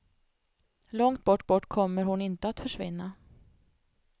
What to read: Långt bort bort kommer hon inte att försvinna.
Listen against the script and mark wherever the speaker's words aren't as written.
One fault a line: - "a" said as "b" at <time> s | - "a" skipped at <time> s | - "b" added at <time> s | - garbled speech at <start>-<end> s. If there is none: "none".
none